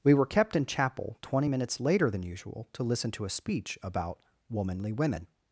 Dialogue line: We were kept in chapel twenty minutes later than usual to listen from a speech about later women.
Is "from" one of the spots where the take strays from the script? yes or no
yes